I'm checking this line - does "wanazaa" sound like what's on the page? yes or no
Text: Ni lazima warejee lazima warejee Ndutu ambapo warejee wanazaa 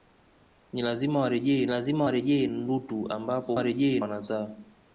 yes